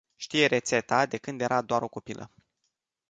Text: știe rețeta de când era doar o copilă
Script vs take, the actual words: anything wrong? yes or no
no